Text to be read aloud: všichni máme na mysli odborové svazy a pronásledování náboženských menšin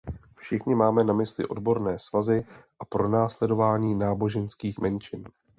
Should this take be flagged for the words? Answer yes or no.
no